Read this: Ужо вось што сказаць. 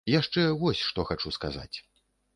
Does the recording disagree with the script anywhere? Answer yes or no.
yes